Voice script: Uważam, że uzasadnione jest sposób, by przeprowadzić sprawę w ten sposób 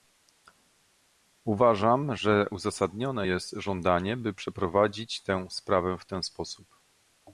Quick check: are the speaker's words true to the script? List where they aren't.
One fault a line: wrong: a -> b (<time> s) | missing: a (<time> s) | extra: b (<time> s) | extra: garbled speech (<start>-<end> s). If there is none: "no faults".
wrong: sposób -> żądanie (3.5 s)
extra: tę (5.2 s)